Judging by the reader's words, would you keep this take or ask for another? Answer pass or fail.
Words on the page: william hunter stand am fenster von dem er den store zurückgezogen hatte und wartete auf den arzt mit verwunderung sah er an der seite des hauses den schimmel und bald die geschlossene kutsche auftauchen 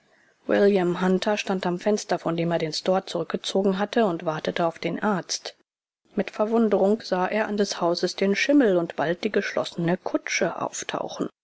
fail